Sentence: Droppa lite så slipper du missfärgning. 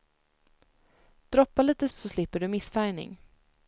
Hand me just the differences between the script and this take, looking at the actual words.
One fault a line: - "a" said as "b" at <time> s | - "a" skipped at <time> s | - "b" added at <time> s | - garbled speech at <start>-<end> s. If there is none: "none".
none